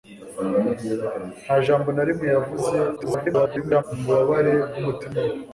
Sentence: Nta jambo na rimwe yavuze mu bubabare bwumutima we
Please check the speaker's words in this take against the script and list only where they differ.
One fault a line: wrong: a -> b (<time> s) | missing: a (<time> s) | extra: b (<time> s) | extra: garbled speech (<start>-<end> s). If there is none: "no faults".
extra: garbled speech (3.0-3.8 s)